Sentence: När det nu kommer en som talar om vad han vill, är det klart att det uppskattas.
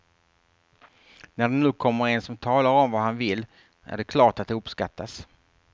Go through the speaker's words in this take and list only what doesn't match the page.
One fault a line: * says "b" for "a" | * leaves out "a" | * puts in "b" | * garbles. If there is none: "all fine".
all fine